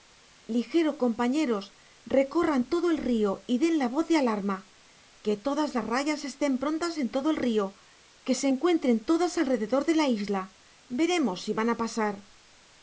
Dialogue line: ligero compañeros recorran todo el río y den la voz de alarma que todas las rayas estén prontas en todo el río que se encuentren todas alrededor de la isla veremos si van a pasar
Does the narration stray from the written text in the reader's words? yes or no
no